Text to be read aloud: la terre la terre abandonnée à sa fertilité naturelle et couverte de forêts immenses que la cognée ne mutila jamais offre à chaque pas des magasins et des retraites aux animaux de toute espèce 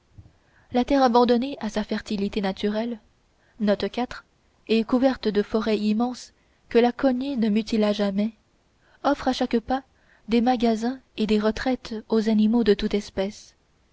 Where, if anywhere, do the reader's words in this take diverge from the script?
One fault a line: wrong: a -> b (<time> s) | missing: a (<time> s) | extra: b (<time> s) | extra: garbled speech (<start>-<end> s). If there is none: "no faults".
missing: la terre (1.0 s)